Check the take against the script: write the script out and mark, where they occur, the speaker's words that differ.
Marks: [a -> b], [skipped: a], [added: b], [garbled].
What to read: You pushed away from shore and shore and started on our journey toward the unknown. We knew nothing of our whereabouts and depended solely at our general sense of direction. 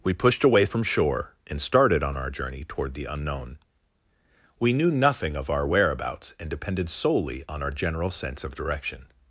[You -> We] pushed away from shore and [skipped: shore and] started on our journey toward the unknown. We knew nothing of our whereabouts and depended solely [at -> on] our general sense of direction.